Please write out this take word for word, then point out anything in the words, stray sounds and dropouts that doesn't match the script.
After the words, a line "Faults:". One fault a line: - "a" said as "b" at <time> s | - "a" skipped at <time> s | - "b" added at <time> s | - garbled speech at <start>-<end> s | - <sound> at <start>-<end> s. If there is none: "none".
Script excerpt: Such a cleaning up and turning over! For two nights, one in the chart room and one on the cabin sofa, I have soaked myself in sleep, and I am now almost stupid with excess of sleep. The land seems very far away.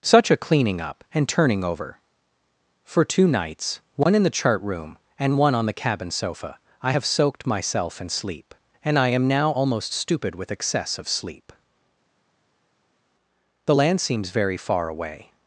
Such a cleaning up and turning over! For two nights, one in the chart room and one on the cabin sofa, I have soaked myself in sleep, and I am now almost stupid with excess of sleep. The land seems very far away.
Faults:
none